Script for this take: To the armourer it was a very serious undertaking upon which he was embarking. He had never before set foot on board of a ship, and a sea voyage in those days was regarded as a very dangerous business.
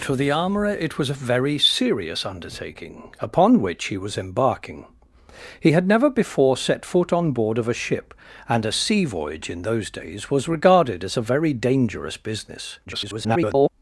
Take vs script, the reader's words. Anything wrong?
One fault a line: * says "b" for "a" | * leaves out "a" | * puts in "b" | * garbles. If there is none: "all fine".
* garbles